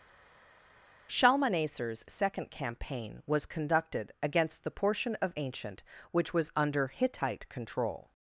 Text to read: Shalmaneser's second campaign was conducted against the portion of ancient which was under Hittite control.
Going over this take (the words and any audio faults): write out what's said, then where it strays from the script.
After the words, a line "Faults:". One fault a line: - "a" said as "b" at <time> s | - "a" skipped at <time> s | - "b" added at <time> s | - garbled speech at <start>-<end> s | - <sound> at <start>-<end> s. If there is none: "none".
Shalmaneser's second campaign was conducted against the portion of ancient which was under Hittite control.
Faults:
none